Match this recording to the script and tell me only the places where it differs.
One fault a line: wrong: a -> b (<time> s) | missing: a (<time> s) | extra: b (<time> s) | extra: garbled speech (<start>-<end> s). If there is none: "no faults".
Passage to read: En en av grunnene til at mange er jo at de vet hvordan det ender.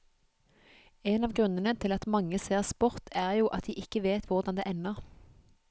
missing: en (1.3 s)
extra: ser sport (2.5 s)
extra: ikke (3.8 s)